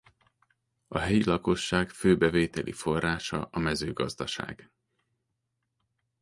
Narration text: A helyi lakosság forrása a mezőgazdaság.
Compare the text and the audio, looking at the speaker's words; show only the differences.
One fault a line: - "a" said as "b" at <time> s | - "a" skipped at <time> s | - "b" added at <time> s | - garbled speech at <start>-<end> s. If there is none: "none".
- "fő bevételi" added at 1.9 s